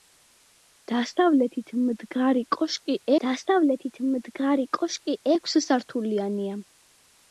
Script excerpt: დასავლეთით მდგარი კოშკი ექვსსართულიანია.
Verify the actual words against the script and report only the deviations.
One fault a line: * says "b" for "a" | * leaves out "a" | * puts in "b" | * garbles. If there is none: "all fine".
* puts in "დასავლეთით მდგარი კოშკი"